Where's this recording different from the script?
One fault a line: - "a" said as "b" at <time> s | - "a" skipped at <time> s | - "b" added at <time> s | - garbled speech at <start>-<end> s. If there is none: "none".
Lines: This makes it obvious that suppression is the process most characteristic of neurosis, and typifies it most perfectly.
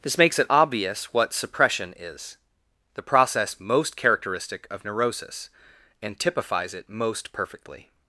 - "that" said as "what" at 1.1 s